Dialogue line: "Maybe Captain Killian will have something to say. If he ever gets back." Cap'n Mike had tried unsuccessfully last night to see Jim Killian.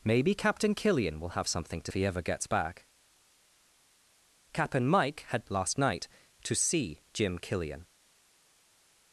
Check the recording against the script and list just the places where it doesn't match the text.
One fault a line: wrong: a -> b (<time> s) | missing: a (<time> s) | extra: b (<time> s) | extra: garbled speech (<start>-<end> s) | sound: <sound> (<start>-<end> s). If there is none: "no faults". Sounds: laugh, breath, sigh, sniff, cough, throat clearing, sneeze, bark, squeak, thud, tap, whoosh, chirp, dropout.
missing: say If (1.9 s)
missing: tried unsuccessfully (5.5 s)